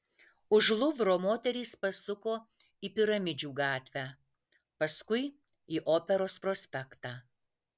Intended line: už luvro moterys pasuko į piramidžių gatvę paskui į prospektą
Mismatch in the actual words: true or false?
true